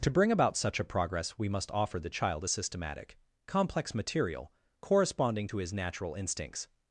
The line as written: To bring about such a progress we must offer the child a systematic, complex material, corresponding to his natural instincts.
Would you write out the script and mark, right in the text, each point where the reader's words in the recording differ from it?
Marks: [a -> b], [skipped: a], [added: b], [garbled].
To bring about such a progress we must offer the child a systematic, complex material, corresponding to his natural instincts.